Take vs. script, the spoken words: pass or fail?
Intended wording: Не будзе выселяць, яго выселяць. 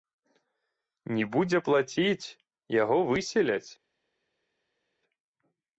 fail